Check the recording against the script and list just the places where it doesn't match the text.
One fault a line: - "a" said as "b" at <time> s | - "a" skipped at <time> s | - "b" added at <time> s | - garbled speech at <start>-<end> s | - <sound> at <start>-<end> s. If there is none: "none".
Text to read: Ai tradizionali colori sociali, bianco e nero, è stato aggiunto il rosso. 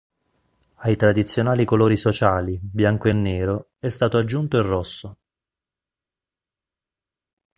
none